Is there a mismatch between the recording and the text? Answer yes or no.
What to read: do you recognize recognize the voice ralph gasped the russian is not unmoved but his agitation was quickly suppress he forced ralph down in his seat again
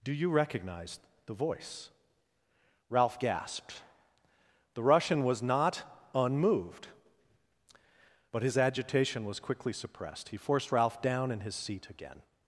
yes